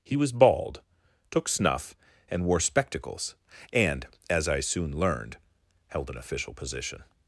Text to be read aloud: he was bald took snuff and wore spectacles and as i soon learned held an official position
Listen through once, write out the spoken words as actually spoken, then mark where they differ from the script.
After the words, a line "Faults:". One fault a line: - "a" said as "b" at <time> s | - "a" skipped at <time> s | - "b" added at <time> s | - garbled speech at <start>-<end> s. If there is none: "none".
he was bald took snuff and wore spectacles and as i soon learned held an official position
Faults:
none